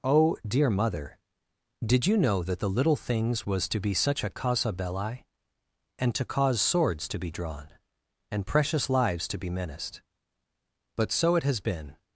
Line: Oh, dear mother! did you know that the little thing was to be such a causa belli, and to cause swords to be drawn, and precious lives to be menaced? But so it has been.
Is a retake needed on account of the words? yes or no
yes